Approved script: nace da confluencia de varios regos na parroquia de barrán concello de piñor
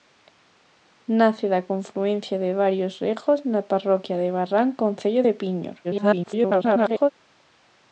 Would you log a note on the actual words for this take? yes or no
yes